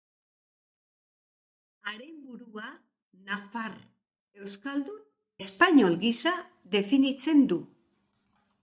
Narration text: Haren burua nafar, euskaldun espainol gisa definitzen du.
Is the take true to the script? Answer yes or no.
yes